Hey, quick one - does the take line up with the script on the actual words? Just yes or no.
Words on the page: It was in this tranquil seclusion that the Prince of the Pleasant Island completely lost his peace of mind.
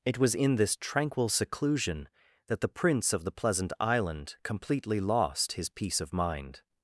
yes